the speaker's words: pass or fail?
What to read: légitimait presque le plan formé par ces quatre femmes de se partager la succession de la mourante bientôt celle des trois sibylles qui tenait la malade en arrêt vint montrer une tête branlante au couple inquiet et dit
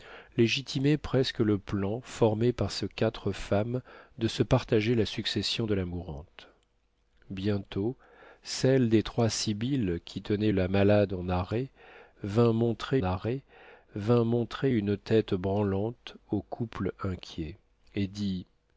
fail